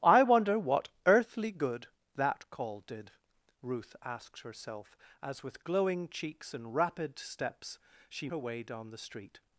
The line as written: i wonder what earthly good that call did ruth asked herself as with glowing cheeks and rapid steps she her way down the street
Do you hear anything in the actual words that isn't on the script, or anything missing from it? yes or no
no